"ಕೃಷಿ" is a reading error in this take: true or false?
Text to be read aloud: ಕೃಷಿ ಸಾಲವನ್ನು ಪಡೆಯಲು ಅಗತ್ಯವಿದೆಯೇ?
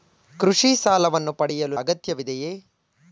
false